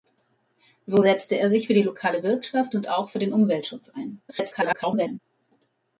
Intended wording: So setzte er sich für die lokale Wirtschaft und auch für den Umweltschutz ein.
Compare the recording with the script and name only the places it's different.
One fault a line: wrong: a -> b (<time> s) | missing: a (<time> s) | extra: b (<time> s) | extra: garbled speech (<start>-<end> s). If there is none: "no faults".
extra: garbled speech (4.3-5.2 s)